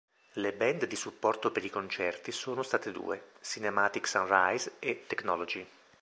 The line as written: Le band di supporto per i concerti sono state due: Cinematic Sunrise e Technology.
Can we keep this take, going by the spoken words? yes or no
yes